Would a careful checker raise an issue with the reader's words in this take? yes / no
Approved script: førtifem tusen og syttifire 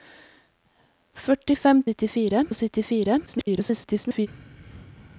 yes